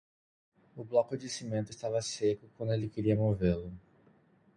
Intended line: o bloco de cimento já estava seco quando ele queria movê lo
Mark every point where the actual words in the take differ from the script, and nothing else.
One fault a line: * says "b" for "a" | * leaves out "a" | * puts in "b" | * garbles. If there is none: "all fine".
* leaves out "já"